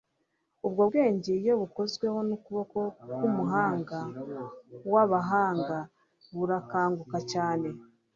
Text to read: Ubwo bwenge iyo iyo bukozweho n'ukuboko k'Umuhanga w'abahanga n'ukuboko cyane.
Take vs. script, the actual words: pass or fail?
fail